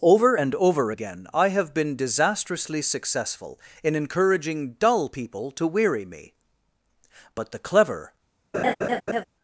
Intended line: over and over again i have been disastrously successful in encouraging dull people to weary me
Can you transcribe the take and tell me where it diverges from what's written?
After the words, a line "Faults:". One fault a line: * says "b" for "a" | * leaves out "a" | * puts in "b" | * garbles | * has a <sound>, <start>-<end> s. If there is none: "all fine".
over and over again i have been disastrously successful in encouraging dull people to weary me but the clever
Faults:
* puts in "but the clever"
* has a laugh, 8.5-9.2 s